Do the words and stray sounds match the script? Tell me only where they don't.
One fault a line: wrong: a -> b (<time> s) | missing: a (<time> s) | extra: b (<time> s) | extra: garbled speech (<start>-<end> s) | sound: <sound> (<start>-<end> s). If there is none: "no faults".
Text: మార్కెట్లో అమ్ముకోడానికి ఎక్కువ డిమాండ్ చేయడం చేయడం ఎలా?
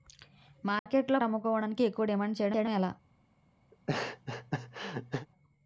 sound: dropout (0.8-0.9 s)
sound: laugh (3.7-5.3 s)